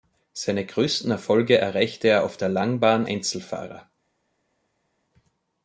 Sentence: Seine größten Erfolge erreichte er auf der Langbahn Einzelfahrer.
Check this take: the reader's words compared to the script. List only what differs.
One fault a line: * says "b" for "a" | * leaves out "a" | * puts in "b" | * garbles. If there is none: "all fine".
all fine